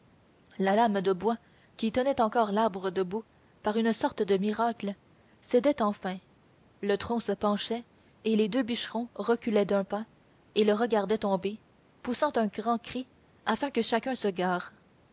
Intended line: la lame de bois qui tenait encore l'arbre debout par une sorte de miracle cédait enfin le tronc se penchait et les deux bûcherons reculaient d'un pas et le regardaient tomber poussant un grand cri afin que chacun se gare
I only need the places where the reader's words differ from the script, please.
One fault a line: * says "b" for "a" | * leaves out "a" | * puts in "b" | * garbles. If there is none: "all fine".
all fine